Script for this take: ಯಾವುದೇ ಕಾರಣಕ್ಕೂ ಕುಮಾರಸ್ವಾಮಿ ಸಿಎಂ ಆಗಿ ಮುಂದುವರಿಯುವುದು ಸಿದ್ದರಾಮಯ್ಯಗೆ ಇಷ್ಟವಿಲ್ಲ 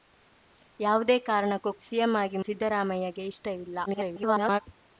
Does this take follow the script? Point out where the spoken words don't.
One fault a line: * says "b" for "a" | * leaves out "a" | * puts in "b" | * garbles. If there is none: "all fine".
* leaves out "ಕುಮಾರಸ್ವಾಮಿ"
* leaves out "ಮುಂದುವರಿಯುವುದು"
* garbles